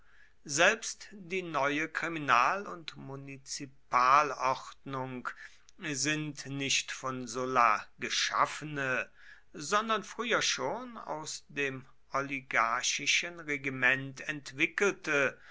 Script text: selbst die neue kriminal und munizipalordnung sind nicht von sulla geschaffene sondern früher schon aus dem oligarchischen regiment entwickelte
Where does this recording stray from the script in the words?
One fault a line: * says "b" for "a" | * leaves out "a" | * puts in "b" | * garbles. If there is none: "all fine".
all fine